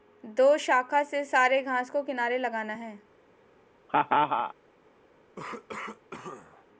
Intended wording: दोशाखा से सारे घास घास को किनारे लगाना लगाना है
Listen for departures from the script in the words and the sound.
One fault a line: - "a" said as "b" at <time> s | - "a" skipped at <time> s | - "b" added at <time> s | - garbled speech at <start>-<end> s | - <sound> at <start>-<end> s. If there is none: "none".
- "घास" skipped at 1.9 s
- "लगाना" skipped at 2.7 s
- laugh at 3.9-4.5 s
- cough at 5.4-6.7 s